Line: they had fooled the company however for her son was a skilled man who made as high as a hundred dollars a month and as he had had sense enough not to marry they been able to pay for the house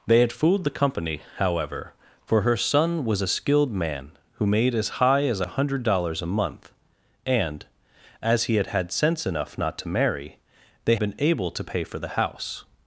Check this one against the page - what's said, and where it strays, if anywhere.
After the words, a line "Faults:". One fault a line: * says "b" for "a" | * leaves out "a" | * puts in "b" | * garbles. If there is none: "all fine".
they had fooled the company however for her son was a skilled man who made as high as a hundred dollars a month and as he had had sense enough not to marry they been able to pay for the house
Faults:
all fine